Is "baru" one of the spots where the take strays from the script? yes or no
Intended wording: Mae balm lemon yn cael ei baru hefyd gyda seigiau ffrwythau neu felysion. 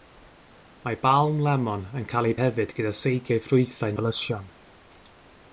yes